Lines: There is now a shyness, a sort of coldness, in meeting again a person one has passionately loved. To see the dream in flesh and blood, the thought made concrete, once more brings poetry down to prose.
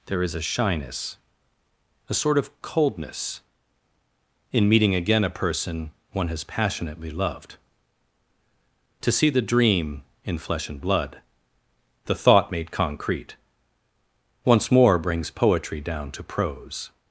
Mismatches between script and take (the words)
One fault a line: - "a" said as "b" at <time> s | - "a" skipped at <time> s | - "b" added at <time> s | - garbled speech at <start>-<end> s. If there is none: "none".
- "now" skipped at 0.3 s